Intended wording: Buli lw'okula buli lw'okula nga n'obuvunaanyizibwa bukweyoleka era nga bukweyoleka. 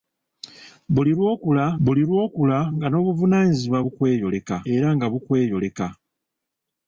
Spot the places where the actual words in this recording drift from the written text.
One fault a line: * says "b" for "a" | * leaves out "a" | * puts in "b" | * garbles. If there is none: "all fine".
all fine